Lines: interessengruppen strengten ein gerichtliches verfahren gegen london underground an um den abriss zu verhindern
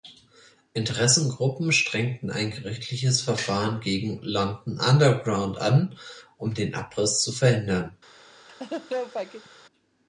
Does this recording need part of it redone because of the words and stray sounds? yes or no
yes